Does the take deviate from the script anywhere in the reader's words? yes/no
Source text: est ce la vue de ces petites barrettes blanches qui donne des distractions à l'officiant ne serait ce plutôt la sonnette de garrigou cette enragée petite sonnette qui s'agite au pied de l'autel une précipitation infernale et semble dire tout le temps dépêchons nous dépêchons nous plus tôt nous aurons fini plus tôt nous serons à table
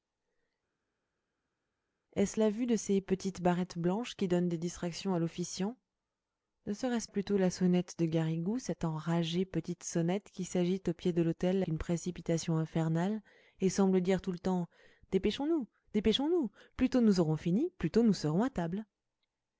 no